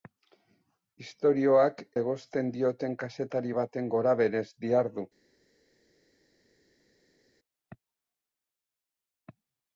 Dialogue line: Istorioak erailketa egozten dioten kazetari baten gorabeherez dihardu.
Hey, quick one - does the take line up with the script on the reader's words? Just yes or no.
no